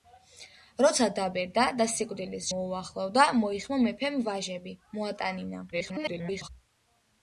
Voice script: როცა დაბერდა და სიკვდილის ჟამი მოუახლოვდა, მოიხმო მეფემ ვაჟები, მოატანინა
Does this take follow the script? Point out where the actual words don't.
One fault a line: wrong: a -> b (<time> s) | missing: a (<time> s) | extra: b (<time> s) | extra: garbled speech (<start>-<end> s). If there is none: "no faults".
missing: ჟამი (2.5 s)
extra: garbled speech (5.7-6.5 s)